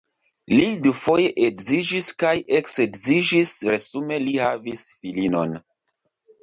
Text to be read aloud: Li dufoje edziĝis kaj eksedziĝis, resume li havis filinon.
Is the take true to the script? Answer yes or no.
yes